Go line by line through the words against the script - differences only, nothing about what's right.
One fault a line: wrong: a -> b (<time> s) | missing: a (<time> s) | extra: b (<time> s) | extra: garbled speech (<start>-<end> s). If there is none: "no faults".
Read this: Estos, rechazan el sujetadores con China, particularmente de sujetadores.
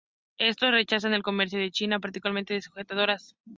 wrong: sujetadores -> comercio (1.2 s)